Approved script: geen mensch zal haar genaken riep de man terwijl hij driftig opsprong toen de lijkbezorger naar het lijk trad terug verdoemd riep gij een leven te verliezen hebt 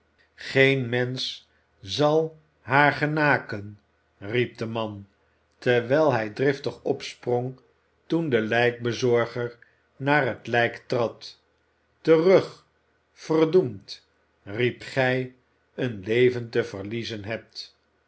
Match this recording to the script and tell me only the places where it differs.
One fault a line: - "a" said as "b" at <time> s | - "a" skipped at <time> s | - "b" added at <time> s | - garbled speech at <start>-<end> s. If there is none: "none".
none